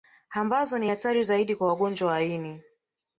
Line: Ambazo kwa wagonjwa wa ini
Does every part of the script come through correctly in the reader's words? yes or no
no